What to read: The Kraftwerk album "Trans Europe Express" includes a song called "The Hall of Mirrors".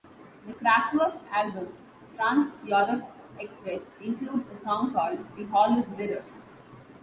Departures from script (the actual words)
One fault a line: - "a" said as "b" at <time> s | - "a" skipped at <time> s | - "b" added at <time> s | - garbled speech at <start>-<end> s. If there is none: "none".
none